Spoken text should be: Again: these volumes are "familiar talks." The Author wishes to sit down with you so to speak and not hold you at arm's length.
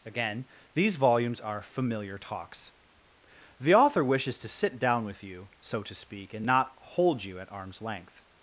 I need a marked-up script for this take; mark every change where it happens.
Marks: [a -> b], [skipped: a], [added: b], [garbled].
Again: these volumes are "familiar talks." The Author wishes to sit down with you so to speak and not hold you at arm's length.